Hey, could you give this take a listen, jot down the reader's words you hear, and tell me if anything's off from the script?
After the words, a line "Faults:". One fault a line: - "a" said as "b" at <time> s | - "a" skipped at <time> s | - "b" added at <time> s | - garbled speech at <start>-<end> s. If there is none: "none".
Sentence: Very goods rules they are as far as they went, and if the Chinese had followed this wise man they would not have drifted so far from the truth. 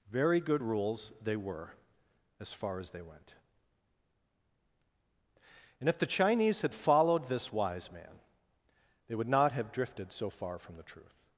Very good rules they were as far as they went, and if the Chinese had followed this wise man they would not have drifted so far from the truth.
Faults:
- "goods" said as "good" at 0.4 s
- "are" said as "were" at 1.4 s